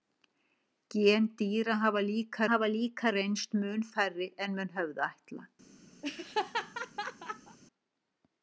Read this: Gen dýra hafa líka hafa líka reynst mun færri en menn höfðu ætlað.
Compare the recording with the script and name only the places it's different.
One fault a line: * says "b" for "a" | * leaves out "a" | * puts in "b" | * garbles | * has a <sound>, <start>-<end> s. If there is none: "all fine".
* has a laugh, 6.0-7.6 s